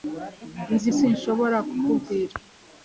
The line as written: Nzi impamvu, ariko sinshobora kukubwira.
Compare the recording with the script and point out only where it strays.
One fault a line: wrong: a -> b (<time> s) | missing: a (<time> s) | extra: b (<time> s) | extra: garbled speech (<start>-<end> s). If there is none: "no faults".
missing: impamvu ariko (0.9 s)